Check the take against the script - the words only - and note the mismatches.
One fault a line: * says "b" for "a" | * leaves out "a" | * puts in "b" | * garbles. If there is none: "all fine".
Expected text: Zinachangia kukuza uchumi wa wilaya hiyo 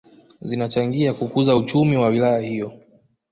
all fine